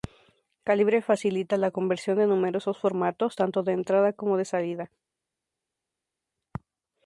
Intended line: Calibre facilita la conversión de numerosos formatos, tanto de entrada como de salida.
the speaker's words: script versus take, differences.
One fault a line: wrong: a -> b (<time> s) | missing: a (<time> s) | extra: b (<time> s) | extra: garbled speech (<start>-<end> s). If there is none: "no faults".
no faults